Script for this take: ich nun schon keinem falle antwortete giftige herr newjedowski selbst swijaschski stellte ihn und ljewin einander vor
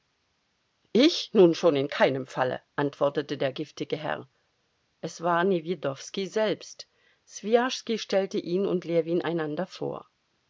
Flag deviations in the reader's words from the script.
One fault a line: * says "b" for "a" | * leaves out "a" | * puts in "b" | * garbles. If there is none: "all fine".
* puts in "in"
* puts in "der"
* puts in "es war"